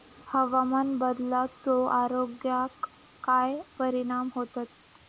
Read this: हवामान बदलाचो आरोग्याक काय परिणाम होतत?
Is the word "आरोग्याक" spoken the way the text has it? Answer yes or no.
yes